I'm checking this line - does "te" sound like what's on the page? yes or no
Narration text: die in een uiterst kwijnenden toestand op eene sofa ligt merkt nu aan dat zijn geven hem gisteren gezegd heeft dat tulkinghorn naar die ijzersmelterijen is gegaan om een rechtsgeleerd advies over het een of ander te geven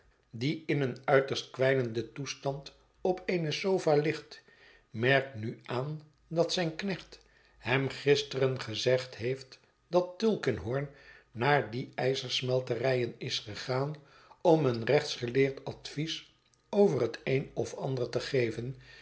yes